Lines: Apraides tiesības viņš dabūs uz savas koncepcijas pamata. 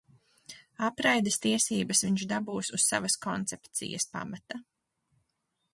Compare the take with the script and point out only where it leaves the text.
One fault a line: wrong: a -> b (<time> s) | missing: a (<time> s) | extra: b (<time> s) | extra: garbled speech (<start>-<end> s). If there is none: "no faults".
no faults